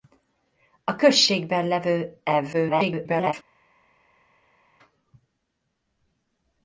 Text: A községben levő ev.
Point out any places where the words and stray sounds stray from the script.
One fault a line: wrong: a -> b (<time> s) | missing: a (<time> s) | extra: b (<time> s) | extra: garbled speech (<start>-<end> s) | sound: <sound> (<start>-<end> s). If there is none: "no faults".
extra: garbled speech (2.5-3.3 s)